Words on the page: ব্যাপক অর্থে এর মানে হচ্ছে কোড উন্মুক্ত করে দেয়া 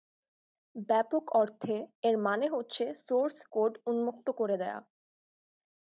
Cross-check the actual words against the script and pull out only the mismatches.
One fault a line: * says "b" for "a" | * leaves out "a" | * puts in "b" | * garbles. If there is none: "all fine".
* puts in "সোর্স"